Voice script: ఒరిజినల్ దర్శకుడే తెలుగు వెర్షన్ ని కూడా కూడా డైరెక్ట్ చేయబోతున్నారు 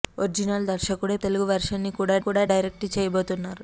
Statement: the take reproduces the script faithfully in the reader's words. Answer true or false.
true